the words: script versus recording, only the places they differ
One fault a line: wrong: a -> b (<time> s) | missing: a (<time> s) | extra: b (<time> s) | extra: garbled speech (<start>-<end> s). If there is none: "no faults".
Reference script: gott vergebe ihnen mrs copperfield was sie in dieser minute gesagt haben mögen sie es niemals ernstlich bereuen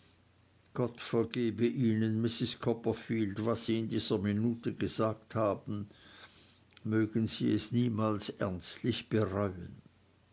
no faults